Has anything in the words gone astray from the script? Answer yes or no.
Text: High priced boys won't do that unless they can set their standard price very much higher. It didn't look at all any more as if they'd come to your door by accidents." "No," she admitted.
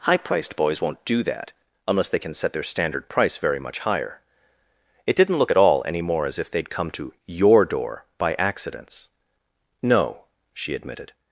no